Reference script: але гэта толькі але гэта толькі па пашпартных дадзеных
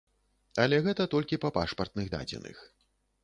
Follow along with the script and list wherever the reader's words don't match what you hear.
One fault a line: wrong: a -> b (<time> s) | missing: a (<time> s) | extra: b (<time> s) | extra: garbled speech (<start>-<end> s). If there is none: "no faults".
missing: але гэта толькі (1.4 s)